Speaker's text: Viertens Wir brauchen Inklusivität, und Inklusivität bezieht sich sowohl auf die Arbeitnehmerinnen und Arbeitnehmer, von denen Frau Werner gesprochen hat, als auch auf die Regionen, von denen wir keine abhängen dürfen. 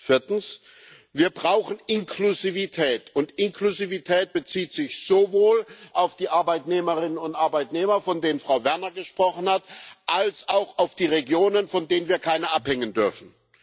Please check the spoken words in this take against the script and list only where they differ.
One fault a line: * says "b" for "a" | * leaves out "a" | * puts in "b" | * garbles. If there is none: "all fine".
all fine